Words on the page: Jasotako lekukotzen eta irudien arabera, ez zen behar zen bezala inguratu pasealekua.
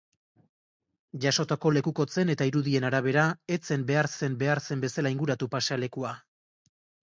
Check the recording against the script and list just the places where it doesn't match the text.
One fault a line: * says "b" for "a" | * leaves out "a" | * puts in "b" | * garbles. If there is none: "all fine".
* puts in "behar zen"